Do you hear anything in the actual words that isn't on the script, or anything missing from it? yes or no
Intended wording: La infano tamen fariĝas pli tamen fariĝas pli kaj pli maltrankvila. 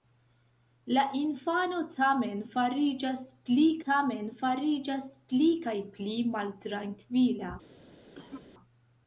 no